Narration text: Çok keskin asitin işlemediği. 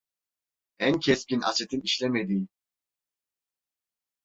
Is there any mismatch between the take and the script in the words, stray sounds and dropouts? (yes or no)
yes